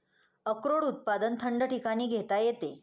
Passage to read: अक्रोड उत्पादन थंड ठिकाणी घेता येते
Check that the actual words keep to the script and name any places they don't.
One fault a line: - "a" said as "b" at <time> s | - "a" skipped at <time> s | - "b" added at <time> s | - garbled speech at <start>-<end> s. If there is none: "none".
none